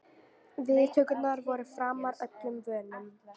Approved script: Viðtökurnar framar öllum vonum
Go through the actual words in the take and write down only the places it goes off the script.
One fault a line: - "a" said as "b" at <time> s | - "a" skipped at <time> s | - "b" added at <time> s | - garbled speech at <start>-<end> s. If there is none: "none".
- "voru" added at 1.5 s